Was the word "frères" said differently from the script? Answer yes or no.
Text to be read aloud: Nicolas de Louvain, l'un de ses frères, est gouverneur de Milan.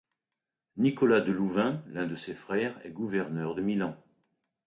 no